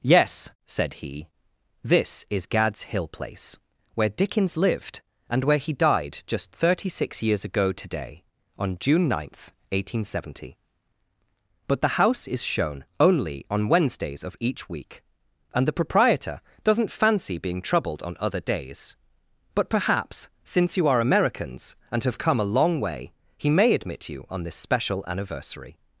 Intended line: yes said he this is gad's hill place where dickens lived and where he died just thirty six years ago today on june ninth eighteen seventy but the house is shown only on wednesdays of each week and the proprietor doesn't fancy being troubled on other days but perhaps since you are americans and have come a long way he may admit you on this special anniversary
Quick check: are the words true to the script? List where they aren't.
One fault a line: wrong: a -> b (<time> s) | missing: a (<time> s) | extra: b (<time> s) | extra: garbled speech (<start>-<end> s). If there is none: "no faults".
no faults